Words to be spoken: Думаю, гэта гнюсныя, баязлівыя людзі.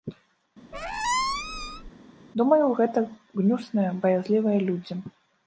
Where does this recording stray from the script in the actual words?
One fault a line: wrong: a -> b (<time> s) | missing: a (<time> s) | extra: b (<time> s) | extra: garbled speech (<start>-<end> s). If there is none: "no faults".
no faults